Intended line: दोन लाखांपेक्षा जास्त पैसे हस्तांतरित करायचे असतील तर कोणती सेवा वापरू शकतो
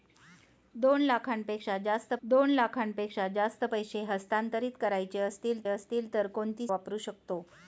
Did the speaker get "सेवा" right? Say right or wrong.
wrong